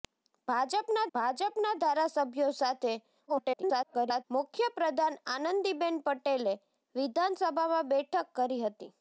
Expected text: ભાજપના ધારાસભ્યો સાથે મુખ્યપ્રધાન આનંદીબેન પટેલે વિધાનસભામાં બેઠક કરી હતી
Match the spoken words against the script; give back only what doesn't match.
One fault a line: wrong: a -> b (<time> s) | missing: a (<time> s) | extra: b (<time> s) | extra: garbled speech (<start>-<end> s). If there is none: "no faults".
extra: ભાજપના (1.1 s)
extra: garbled speech (3.3-4.2 s)